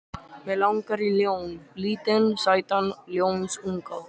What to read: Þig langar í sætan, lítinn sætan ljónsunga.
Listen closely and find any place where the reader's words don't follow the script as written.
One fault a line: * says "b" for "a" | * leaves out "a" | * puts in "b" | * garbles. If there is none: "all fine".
* says "Mig" for "Þig"
* says "ljón" for "sætan"